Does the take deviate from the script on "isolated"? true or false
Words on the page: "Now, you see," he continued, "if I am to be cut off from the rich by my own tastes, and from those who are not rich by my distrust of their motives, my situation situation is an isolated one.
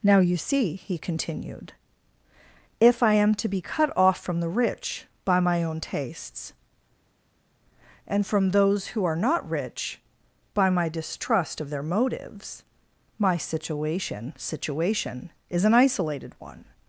false